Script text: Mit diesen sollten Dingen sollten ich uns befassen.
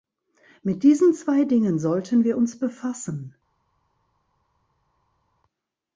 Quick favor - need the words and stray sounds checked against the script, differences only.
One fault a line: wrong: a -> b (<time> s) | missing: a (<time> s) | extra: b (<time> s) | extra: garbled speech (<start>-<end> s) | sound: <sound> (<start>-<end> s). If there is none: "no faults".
wrong: sollten -> zwei (1.1 s)
wrong: ich -> wir (2.2 s)